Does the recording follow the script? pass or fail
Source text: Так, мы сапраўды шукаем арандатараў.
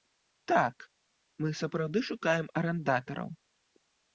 pass